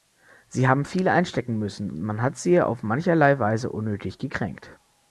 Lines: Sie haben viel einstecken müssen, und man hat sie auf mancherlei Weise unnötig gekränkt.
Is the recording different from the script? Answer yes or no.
no